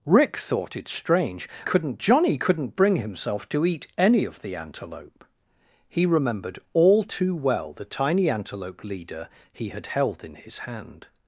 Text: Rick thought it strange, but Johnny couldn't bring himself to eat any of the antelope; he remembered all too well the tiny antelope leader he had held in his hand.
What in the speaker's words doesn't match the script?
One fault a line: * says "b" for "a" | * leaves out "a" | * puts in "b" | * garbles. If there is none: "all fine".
* says "couldn't" for "but"